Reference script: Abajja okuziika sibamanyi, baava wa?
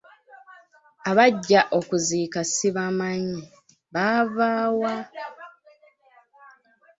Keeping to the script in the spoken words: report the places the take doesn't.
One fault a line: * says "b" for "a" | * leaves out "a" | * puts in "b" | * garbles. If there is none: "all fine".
all fine